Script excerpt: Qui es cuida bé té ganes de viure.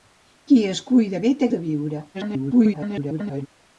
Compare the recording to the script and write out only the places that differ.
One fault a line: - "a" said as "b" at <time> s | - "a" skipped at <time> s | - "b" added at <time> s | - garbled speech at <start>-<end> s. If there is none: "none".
- "ganes" skipped at 1.5 s
- garbled speech at 2.1-3.5 s